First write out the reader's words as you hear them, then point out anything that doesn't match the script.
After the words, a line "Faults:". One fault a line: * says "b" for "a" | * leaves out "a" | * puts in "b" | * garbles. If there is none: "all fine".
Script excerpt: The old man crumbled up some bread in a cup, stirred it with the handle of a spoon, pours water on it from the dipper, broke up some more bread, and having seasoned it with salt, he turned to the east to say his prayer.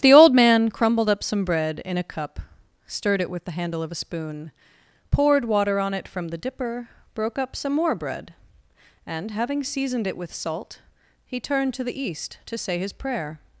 The old man crumbled up some bread in a cup, stirred it with the handle of a spoon, poured water on it from the dipper, broke up some more bread, and having seasoned it with salt, he turned to the east to say his prayer.
Faults:
* says "poured" for "pours"